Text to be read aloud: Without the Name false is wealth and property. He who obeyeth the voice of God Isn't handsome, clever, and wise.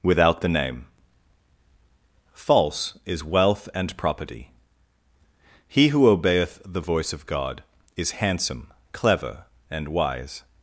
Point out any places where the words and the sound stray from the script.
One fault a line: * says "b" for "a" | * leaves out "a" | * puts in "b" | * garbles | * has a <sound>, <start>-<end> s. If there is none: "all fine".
* says "Is" for "Isn't"